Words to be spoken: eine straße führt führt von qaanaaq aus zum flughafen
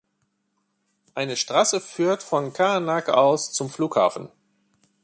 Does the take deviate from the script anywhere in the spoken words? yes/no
yes